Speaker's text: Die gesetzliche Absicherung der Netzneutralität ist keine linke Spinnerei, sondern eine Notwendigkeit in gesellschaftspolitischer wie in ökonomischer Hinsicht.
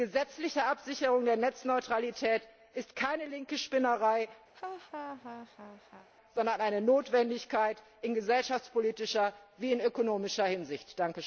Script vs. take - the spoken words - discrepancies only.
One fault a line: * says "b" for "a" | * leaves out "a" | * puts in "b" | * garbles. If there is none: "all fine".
all fine